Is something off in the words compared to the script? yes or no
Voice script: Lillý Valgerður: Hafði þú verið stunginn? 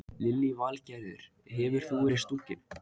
yes